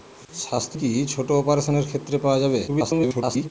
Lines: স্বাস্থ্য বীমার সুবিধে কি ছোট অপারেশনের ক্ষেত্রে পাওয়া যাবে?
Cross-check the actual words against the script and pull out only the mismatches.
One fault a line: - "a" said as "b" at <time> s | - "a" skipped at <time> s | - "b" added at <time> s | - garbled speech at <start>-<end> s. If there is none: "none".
- "বীমার সুবিধে" skipped at 0.8 s
- garbled speech at 2.7-3.5 s